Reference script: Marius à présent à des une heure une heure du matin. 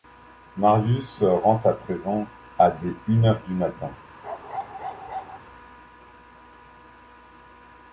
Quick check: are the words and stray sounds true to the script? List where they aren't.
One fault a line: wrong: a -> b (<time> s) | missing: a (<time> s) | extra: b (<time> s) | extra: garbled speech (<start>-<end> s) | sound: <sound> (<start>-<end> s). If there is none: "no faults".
extra: rentre (1.4 s)
missing: une heure (3.4 s)
sound: bark (4.2-5.4 s)